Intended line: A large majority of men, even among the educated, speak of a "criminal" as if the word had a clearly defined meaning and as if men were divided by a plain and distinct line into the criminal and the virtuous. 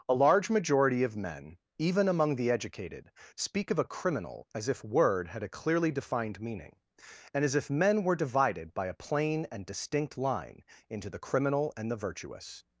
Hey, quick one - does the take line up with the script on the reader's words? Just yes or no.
no